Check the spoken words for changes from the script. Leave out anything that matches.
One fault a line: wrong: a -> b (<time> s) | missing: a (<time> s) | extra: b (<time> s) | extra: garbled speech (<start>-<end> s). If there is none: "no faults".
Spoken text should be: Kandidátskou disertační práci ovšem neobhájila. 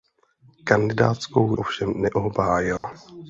missing: disertační práci (1.6 s)